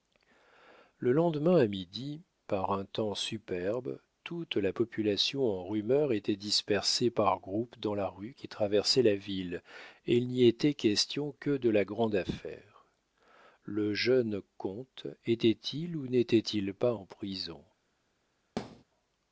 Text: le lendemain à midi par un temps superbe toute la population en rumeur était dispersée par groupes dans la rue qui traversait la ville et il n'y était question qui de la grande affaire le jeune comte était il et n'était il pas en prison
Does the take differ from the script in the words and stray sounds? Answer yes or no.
yes